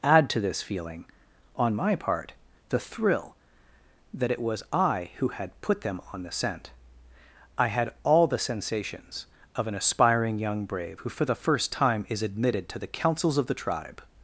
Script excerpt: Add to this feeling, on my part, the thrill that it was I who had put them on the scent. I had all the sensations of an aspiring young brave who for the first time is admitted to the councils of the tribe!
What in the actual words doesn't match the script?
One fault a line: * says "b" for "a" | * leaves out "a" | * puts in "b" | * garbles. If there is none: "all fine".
all fine